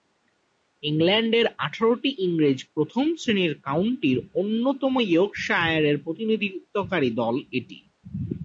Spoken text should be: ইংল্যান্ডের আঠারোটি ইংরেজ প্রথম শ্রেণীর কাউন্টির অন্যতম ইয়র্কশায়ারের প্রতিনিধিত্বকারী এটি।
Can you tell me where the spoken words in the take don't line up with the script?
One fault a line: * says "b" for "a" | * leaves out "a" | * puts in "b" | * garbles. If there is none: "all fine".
* puts in "দল"